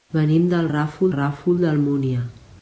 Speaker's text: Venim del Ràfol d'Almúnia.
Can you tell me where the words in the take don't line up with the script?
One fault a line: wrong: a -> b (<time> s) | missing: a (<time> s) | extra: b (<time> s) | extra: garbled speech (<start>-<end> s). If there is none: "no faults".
extra: Ràfol (1.1 s)